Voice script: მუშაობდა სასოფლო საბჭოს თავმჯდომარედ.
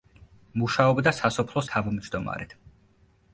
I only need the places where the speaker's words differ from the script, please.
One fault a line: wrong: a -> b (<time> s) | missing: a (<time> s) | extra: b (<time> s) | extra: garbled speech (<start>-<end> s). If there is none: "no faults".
missing: საბჭოს (1.6 s)